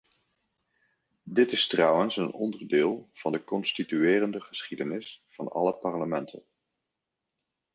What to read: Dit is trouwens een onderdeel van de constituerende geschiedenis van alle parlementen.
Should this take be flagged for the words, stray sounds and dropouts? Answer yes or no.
no